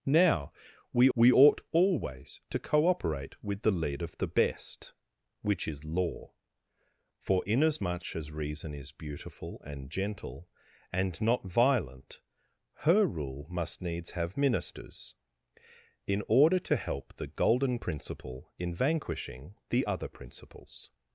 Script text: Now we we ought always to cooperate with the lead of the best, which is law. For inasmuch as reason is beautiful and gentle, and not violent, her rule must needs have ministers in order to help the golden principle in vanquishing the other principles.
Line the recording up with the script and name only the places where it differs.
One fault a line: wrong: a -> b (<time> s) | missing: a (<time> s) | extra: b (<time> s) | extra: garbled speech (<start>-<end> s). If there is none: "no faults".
no faults